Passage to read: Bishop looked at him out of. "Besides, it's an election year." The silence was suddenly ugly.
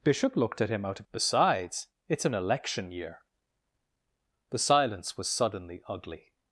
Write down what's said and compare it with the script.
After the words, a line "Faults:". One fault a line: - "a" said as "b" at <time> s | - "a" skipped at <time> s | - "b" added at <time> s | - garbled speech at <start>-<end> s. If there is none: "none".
Bishop looked at him out of. "Besides, it's an election year." The silence was suddenly ugly.
Faults:
none